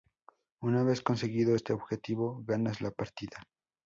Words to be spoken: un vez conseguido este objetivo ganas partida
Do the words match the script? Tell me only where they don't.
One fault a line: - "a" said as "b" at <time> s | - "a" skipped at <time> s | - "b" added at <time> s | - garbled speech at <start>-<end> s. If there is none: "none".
- "un" said as "una" at 0.6 s
- "la" added at 2.8 s